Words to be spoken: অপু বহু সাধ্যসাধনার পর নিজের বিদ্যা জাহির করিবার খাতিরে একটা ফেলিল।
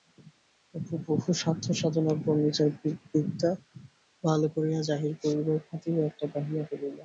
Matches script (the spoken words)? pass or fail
fail